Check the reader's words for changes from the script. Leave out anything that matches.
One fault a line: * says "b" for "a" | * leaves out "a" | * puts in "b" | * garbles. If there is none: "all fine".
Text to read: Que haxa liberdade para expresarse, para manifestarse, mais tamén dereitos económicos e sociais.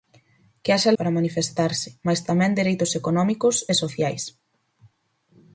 * leaves out "liberdade para expresarse"